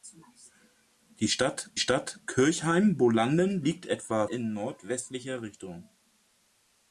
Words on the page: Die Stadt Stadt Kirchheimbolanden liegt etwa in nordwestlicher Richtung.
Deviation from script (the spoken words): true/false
false